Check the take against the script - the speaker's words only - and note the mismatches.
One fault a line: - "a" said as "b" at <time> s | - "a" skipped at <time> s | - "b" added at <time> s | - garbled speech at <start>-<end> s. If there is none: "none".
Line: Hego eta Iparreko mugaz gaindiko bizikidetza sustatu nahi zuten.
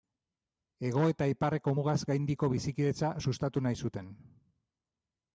none